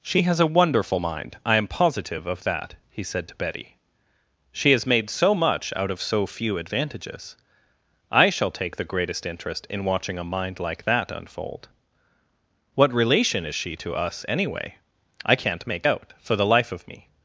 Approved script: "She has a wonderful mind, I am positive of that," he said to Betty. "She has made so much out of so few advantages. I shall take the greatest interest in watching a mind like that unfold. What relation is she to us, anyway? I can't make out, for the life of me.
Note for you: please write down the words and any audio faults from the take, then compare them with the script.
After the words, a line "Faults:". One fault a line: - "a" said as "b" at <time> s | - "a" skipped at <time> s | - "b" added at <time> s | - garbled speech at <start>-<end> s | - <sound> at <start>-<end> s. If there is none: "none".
"She has a wonderful mind, I am positive of that," he said to Betty. "She has made so much out of so few advantages. I shall take the greatest interest in watching a mind like that unfold. What relation is she to us, anyway? I can't make out, for the life of me.
Faults:
none